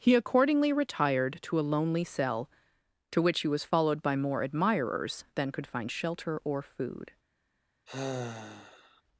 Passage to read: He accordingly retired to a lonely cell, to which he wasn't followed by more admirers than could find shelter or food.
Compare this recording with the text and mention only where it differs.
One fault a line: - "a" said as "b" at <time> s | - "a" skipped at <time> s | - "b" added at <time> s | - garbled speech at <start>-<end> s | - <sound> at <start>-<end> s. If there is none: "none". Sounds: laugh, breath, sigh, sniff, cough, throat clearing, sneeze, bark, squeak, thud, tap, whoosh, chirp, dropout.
- "wasn't" said as "was" at 3.5 s
- sigh at 7.9-9.0 s